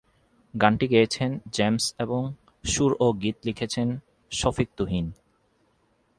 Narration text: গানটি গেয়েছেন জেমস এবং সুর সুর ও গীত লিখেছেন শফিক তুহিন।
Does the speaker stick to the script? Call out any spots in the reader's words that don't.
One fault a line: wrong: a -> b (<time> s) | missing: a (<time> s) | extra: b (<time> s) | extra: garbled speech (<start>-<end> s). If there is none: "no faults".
missing: সুর (2.9 s)